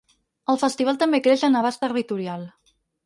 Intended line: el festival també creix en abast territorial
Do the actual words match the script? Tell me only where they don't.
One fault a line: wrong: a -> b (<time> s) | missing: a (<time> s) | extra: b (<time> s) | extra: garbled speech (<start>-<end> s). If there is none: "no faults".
no faults